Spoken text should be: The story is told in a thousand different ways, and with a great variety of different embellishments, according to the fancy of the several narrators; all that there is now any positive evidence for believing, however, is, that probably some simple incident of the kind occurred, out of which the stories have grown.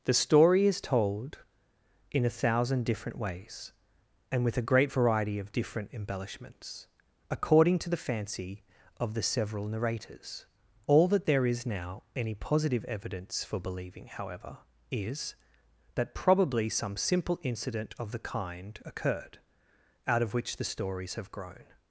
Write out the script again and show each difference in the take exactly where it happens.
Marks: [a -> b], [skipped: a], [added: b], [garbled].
The story is told in a thousand different ways, and with a great variety of different embellishments, according to the fancy of the several narrators; all that there is now any positive evidence for believing, however, is, that probably some simple incident of the kind occurred, out of which the stories have grown.